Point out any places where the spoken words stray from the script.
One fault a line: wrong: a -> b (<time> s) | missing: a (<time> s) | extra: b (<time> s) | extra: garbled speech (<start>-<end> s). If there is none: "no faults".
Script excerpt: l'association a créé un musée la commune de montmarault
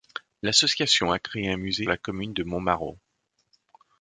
no faults